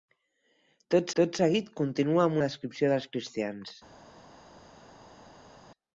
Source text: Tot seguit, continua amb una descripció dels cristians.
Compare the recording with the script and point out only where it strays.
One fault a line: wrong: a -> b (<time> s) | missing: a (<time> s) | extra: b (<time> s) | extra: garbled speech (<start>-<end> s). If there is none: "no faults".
extra: tot (1.2 s)
missing: una (2.4 s)